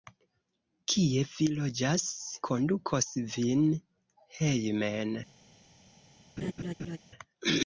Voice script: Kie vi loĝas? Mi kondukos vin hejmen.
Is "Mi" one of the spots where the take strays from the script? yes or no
yes